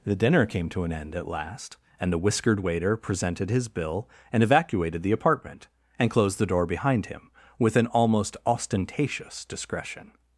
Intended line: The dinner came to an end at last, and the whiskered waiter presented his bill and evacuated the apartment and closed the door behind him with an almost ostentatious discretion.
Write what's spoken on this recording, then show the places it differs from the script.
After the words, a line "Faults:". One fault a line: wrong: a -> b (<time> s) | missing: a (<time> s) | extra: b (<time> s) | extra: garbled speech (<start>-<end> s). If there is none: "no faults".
The dinner came to an end at last, and the whiskered waiter presented his bill and evacuated the apartment and closed the door behind him with an almost ostentatious discretion.
Faults:
no faults